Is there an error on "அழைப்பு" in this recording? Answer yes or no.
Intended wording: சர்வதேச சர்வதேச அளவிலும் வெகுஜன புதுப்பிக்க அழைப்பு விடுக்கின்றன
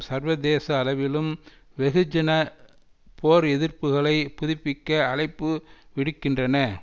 no